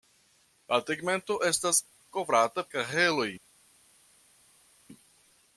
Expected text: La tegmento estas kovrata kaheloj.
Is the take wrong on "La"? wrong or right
right